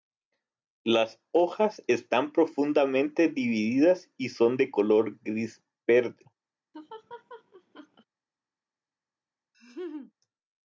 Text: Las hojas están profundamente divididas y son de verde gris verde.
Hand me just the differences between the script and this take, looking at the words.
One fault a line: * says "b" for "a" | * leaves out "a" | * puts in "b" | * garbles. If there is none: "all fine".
* says "color" for "verde"